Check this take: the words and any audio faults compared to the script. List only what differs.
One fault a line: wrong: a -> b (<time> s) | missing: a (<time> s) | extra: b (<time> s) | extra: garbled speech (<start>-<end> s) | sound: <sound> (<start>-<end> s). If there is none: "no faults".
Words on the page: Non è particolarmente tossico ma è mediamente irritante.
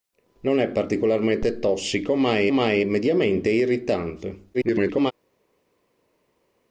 extra: ma è (2.5 s)
extra: garbled speech (4.5-5.1 s)